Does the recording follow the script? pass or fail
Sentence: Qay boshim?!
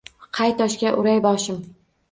fail